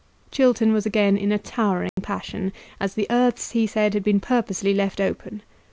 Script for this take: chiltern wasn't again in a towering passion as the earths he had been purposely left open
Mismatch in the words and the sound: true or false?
true